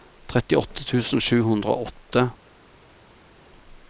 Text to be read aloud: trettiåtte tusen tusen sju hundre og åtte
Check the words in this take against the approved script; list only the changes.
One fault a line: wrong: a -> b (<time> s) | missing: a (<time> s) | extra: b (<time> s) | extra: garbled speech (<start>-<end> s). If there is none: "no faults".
missing: tusen (1.2 s)